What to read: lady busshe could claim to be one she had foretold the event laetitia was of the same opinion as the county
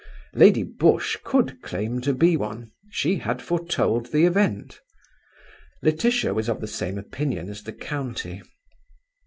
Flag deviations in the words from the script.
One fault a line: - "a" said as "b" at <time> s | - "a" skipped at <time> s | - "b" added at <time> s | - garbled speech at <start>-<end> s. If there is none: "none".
none